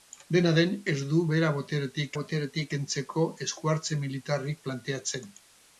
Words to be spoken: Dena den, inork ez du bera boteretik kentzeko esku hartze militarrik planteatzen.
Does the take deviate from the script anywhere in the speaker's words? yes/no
yes